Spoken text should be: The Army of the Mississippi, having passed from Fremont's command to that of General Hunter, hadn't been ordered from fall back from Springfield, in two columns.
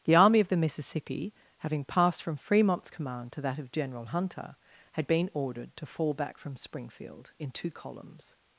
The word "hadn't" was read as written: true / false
false